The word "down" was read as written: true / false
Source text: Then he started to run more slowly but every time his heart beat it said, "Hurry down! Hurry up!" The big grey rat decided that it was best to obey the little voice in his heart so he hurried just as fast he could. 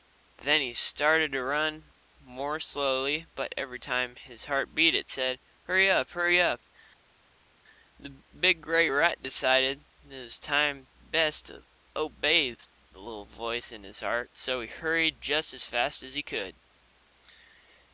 false